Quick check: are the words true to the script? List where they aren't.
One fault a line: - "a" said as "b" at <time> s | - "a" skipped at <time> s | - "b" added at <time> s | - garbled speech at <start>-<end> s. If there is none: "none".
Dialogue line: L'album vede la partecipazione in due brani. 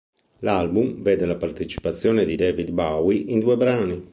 - "di David Bowie" added at 2.2 s